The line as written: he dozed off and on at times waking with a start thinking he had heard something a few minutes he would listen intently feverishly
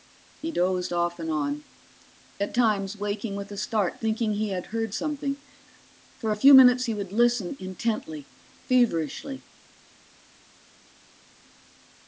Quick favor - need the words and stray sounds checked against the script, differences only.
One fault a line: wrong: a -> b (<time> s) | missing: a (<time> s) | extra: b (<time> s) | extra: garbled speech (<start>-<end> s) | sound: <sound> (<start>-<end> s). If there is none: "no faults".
extra: for (6.2 s)